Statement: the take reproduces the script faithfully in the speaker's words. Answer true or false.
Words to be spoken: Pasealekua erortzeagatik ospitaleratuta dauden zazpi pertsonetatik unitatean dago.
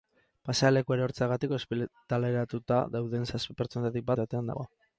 true